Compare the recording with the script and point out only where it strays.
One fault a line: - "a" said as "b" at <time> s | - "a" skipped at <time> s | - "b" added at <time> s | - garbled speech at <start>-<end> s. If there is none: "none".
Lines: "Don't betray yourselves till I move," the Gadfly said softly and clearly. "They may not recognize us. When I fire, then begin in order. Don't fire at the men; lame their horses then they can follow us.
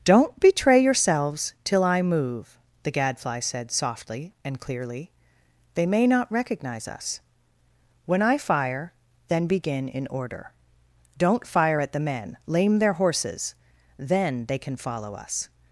none